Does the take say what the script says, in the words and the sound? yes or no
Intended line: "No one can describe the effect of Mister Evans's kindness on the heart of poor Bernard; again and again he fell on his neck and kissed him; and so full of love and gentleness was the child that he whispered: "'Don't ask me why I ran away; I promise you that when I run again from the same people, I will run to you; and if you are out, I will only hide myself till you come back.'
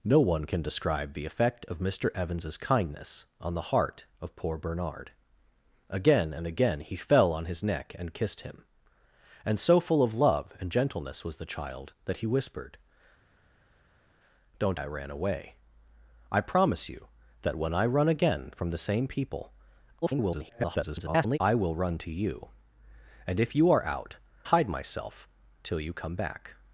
no